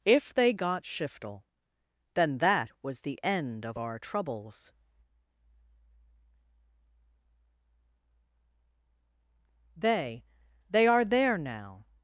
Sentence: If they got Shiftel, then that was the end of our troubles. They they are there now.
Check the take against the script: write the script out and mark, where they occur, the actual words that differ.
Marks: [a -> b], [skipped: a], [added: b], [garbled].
If they got Shiftel, then that was the end of our troubles. They they are there now.